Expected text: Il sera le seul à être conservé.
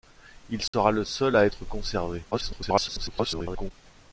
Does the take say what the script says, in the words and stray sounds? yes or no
no